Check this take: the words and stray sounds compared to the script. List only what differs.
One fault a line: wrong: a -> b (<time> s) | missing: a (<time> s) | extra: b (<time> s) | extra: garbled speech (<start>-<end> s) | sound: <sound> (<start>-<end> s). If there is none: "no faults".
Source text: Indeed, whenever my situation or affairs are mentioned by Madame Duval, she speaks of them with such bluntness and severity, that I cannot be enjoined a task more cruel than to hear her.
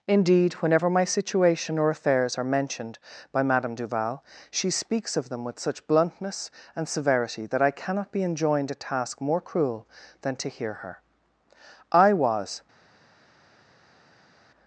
extra: I was (11.9 s)